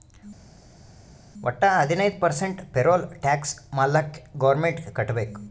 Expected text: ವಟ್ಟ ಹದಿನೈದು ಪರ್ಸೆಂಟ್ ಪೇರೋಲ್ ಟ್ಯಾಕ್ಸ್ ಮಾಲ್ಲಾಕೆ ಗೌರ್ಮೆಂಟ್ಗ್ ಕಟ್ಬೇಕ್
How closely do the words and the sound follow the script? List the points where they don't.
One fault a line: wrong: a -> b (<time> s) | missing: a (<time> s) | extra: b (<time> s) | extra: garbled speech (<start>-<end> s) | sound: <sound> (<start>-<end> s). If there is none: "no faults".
no faults